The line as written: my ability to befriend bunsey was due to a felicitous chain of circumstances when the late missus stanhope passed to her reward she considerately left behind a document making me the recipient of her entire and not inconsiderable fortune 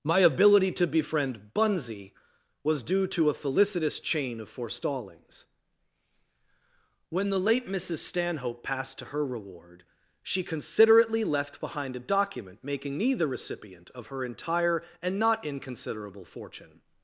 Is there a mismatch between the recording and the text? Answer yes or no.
yes